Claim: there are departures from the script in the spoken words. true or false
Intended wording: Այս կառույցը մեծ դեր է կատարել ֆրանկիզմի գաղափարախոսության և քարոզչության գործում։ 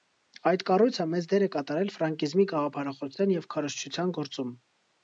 true